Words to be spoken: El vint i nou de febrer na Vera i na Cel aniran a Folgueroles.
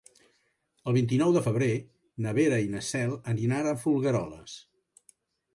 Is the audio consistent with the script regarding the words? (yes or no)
yes